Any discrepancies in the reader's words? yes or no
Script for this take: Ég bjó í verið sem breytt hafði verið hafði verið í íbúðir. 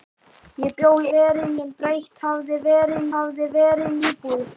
no